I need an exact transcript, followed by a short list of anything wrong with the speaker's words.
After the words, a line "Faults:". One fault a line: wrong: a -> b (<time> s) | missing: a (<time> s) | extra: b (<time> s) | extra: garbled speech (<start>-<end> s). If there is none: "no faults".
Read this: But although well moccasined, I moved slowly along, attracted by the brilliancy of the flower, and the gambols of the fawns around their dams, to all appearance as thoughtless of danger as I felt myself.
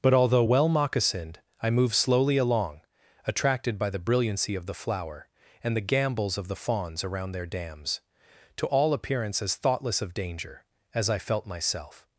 But although well moccasined, I moved slowly along, attracted by the brilliancy of the flower, and the gambols of the fawns around their dams, to all appearance as thoughtless of danger as I felt myself.
Faults:
no faults